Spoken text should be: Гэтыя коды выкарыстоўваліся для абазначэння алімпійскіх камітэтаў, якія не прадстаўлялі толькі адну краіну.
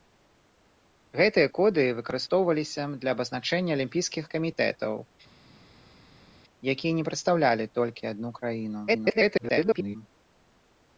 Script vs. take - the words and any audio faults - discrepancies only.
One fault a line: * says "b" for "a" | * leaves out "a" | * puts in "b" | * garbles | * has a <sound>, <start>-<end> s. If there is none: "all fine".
* garbles